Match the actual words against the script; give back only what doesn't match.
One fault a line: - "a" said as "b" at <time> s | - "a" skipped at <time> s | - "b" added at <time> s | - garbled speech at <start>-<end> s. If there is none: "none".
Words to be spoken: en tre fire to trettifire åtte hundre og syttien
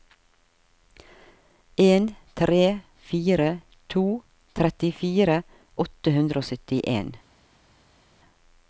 none